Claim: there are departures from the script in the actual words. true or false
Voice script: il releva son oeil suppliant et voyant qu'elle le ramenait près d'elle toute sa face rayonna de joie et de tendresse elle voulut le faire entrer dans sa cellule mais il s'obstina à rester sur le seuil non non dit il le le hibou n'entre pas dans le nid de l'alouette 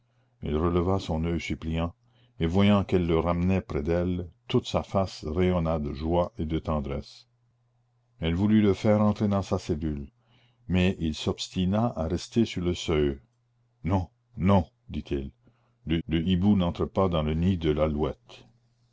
false